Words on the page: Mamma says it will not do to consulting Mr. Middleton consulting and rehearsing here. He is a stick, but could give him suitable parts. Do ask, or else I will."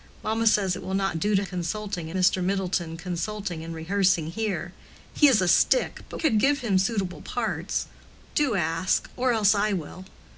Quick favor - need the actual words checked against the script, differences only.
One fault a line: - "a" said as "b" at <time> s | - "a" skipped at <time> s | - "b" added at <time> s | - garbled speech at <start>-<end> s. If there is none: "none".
none